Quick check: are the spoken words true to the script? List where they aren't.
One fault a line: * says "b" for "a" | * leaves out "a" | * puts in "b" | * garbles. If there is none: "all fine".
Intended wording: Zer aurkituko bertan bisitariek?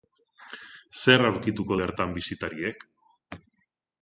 all fine